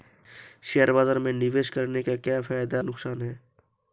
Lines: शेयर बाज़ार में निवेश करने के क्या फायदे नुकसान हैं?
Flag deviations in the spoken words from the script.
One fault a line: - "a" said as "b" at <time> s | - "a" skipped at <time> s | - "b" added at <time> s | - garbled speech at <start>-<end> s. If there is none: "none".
none